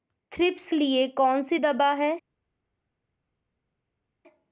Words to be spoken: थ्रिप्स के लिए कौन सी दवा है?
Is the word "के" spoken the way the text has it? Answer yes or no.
no